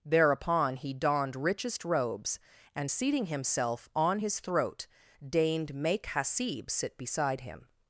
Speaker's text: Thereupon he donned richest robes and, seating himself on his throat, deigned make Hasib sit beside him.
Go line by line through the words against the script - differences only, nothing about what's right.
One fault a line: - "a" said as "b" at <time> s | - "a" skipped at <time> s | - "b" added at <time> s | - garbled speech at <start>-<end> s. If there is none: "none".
none